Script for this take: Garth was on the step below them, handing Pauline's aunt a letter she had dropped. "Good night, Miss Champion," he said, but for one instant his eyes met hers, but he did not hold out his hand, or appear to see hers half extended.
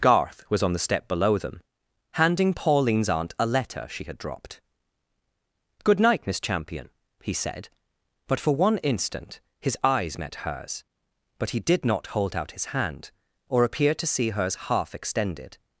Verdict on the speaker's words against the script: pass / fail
pass